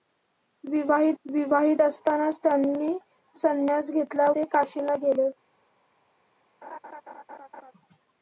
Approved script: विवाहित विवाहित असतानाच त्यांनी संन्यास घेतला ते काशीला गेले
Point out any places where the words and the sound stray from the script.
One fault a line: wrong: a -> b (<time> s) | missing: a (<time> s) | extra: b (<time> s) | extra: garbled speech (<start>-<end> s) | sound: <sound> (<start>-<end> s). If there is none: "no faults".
sound: laugh (6.6-7.7 s)